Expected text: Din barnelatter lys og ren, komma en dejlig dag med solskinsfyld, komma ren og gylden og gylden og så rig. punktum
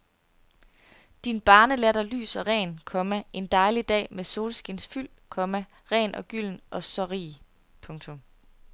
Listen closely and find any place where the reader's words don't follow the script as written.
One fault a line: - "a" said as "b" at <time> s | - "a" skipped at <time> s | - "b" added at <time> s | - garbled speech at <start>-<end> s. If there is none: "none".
- "gylden og" skipped at 6.8 s